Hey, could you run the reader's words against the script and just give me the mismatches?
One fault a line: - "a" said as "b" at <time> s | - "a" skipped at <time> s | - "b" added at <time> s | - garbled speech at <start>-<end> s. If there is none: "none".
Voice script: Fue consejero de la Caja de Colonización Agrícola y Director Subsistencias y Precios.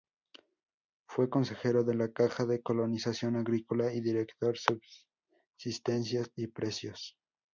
none